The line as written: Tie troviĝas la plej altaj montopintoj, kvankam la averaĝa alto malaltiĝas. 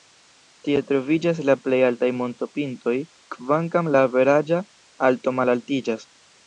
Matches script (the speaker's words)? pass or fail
pass